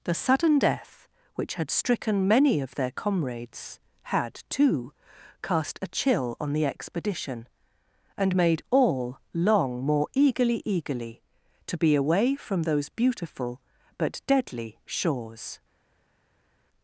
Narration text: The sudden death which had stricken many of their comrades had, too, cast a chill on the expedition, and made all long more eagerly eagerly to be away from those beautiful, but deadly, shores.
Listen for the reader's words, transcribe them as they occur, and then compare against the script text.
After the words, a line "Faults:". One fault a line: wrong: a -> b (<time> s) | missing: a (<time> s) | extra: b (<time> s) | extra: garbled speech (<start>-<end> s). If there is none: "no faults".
The sudden death which had stricken many of their comrades had, too, cast a chill on the expedition, and made all long more eagerly eagerly to be away from those beautiful, but deadly, shores.
Faults:
no faults